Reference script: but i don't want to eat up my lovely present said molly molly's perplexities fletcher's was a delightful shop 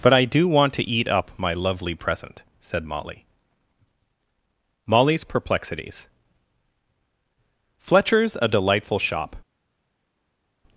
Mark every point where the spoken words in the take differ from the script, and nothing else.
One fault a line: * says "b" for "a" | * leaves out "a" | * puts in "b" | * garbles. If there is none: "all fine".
* says "do" for "don't"
* leaves out "was"